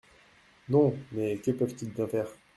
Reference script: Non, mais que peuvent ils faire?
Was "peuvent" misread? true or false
false